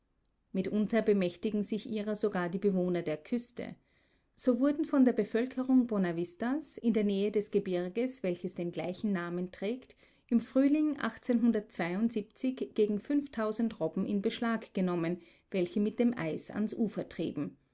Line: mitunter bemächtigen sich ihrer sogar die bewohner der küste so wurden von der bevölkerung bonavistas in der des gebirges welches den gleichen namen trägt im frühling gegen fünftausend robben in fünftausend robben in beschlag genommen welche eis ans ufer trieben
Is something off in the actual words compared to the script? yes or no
yes